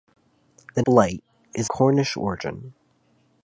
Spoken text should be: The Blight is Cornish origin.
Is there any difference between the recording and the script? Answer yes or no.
no